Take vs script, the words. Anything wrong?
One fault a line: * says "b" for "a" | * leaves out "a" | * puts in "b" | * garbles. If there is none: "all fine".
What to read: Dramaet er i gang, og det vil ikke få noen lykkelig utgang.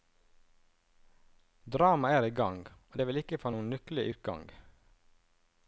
all fine